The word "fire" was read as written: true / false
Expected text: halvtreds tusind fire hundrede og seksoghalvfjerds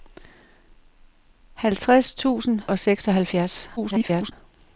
false